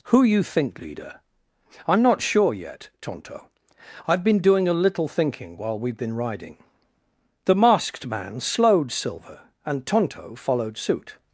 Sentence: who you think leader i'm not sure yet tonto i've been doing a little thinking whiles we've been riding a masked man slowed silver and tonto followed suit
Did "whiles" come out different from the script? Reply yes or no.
yes